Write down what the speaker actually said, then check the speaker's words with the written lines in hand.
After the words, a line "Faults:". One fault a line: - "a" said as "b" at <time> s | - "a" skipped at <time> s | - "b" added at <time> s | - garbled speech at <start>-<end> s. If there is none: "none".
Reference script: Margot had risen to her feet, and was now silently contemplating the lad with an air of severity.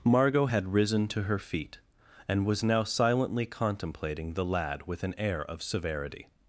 Margot had risen to her feet, and was now silently contemplating the lad with an air of severity.
Faults:
none